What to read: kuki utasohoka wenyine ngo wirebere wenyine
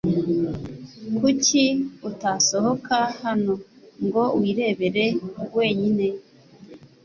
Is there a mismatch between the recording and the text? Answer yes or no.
yes